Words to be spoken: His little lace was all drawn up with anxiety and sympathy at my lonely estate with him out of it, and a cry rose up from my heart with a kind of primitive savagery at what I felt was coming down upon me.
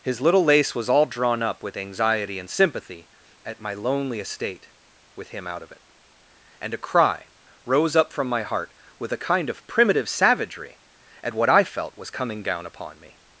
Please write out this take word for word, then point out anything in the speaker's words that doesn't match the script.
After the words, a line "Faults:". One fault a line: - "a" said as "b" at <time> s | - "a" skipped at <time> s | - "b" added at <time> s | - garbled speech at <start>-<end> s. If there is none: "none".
His little lace was all drawn up with anxiety and sympathy at my lonely estate with him out of it, and a cry rose up from my heart with a kind of primitive savagery at what I felt was coming down upon me.
Faults:
none